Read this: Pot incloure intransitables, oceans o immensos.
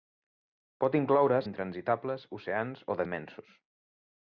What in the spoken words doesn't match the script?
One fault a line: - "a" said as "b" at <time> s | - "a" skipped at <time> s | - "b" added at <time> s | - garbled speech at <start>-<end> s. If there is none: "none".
none